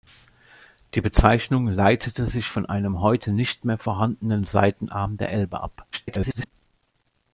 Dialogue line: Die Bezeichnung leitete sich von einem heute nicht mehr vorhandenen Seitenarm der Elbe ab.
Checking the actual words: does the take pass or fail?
fail